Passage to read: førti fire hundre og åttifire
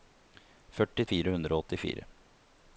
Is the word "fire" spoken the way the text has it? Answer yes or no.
yes